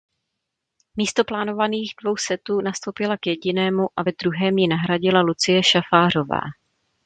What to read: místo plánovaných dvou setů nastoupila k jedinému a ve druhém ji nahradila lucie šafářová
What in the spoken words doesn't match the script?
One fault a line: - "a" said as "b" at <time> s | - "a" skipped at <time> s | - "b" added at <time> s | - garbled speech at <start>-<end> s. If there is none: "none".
none